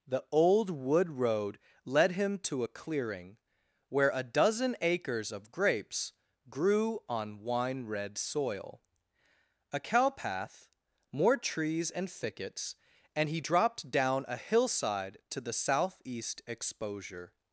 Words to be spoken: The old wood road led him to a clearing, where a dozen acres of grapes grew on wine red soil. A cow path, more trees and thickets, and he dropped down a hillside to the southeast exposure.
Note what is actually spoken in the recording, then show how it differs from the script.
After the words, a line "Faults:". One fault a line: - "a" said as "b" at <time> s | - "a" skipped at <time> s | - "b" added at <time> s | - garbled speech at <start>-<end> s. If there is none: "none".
The old wood road led him to a clearing, where a dozen acres of grapes grew on wine red soil. A cow path, more trees and thickets, and he dropped down a hillside to the southeast exposure.
Faults:
none